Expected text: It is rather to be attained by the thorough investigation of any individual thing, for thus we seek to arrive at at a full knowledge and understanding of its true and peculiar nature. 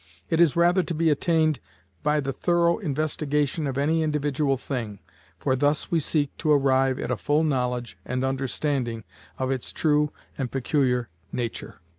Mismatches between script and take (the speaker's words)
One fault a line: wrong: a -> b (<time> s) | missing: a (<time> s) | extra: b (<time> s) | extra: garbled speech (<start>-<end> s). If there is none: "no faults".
missing: at (7.1 s)